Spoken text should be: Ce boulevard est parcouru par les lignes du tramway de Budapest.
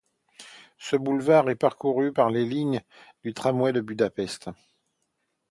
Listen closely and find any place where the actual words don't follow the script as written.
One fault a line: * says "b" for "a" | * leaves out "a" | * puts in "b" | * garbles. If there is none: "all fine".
all fine